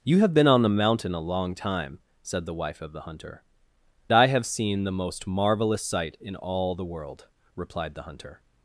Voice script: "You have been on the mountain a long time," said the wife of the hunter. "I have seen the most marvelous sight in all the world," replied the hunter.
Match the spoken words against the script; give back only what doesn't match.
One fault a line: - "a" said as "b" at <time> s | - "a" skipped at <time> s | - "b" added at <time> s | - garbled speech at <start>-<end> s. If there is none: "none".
none